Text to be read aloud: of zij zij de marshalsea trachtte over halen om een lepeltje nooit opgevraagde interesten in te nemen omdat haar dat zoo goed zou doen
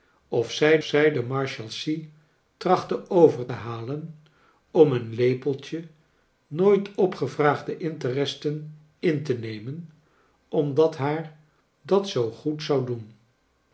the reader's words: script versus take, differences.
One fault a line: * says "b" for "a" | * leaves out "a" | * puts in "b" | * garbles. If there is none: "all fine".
all fine